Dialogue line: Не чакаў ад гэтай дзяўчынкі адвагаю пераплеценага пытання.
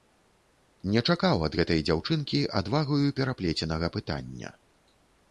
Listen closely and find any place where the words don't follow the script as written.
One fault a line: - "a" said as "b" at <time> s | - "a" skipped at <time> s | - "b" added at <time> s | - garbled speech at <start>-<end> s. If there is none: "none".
none